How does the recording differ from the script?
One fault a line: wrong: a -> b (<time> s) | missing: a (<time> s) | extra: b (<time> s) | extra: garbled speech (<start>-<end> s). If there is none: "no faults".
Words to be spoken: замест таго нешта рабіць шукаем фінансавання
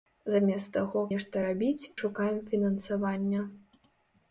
no faults